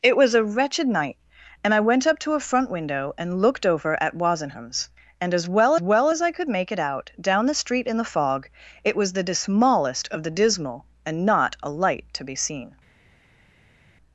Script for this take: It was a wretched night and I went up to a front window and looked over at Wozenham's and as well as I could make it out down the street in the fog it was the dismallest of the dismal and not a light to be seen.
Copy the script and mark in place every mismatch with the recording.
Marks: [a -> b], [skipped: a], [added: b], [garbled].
It was a wretched night and I went up to a front window and looked over at Wozenham's and as well [added: well] as I could make it out down the street in the fog it was the dismallest of the dismal and not a light to be seen.